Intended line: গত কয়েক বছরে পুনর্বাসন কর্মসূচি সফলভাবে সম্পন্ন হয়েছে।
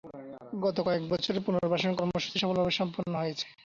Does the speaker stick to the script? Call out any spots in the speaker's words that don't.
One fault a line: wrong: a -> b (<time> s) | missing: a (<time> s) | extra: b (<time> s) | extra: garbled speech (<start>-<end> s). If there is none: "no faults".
no faults